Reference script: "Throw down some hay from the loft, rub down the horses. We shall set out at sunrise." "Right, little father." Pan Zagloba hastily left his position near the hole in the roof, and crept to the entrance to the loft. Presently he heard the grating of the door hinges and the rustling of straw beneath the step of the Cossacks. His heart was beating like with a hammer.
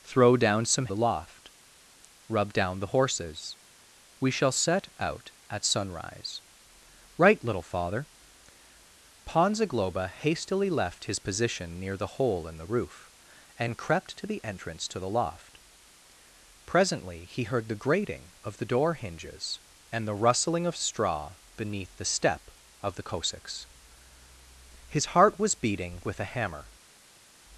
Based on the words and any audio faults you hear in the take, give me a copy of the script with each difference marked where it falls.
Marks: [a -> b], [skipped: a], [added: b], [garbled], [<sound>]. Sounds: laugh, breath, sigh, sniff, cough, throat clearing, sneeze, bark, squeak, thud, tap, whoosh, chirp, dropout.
"Throw down some [skipped: hay from] the loft, rub down the horses. We shall set out at sunrise." "Right, little father." Pan Zagloba hastily left his position near the hole in the roof, and crept to the entrance to the loft. Presently he heard the grating of the door hinges and the rustling of straw beneath the step of the Cossacks. His heart was beating [skipped: like] with a hammer.